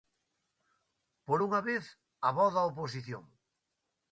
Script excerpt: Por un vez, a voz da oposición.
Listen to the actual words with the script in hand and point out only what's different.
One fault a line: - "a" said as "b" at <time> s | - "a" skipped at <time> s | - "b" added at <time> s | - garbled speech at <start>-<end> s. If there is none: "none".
- "un" said as "unha" at 1.5 s